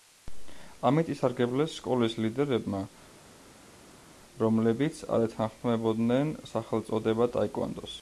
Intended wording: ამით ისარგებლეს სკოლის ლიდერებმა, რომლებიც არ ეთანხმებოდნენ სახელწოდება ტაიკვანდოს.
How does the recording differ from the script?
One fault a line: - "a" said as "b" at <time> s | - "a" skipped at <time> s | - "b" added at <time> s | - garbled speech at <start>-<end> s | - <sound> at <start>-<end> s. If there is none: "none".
none